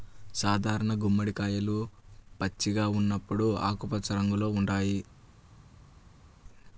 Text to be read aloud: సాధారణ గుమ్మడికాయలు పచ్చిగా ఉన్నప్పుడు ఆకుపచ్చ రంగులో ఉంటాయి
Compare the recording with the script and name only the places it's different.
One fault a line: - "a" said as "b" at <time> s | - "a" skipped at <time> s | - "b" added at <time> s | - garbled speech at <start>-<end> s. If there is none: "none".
none